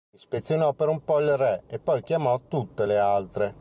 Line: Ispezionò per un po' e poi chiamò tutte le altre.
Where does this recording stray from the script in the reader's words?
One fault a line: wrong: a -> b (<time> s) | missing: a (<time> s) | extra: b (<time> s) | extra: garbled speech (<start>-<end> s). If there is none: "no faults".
extra: il re (1.2 s)